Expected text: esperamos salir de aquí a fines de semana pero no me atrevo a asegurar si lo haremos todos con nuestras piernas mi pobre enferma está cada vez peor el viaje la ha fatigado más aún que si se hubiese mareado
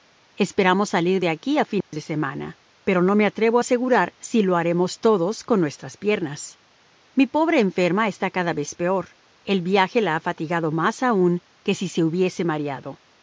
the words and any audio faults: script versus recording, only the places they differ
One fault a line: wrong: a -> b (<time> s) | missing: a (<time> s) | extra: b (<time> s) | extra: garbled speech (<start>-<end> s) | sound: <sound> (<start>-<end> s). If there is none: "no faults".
sound: dropout (1.8-1.9 s)